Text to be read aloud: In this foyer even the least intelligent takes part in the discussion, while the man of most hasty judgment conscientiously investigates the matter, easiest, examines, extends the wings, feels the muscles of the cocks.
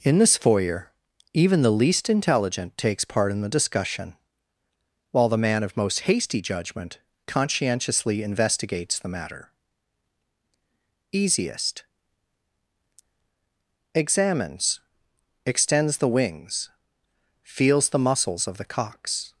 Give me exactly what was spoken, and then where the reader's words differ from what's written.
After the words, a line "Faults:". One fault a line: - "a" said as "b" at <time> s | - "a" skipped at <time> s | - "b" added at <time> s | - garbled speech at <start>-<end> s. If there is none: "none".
In this foyer even the least intelligent takes part in the discussion, while the man of most hasty judgment conscientiously investigates the matter, easiest, examines, extends the wings, feels the muscles of the cocks.
Faults:
none